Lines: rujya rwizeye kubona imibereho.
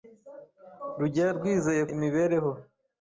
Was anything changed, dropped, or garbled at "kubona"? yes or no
yes